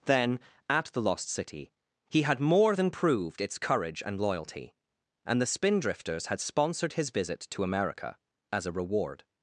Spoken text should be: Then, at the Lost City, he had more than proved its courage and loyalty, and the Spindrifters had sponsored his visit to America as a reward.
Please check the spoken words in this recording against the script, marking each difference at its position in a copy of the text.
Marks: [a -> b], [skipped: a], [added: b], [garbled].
Then, at the Lost City, he had more than proved its courage and loyalty, and the Spindrifters had sponsored his visit to America as a reward.